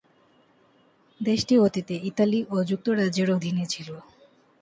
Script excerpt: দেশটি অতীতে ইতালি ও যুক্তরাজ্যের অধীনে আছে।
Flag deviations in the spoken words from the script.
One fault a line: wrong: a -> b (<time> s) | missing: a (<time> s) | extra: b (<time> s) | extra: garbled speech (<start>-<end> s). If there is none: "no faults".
wrong: আছে -> ছিল (3.7 s)